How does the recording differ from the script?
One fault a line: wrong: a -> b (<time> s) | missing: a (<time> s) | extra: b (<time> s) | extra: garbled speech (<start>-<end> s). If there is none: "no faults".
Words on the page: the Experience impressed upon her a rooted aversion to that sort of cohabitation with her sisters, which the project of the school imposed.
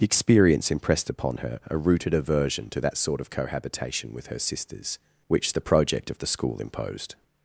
no faults